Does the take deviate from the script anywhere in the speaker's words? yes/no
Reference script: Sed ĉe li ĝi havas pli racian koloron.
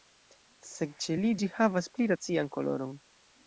no